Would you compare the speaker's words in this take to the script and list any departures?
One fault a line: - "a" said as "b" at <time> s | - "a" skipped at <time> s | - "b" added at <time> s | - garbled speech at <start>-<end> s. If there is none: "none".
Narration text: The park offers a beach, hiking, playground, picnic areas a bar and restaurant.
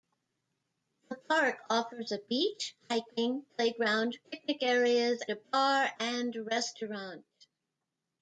none